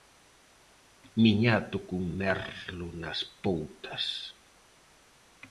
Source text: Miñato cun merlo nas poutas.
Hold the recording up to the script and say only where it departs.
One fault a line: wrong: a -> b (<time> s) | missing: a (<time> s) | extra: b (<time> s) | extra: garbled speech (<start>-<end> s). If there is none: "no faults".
no faults